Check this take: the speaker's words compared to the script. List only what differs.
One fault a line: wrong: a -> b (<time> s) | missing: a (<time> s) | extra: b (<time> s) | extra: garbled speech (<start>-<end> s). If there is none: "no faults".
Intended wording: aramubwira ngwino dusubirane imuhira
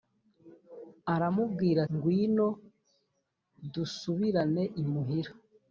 no faults